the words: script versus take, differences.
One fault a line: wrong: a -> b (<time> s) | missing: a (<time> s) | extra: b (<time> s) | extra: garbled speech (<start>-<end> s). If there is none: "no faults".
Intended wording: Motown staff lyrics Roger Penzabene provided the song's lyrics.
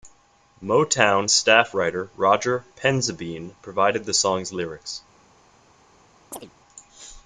wrong: lyrics -> writer (1.7 s)